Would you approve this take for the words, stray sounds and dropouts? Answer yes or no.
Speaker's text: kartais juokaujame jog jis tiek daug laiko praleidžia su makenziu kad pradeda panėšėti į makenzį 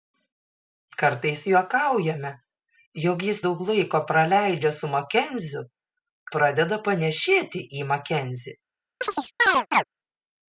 no